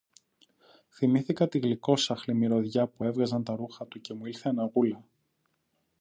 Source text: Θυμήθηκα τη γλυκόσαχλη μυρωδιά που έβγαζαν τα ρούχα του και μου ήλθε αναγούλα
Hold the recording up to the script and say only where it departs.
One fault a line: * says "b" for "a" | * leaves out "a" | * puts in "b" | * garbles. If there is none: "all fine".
all fine